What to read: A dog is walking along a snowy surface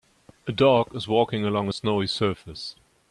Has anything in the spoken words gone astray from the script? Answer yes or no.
no